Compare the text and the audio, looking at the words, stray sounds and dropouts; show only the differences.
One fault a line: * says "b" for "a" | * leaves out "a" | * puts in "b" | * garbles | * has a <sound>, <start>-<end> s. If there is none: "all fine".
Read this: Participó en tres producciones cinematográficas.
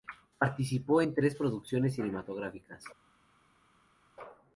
all fine